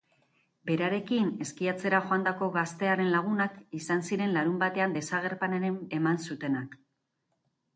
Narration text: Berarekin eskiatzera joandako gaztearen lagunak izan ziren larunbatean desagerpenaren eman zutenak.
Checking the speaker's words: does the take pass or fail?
pass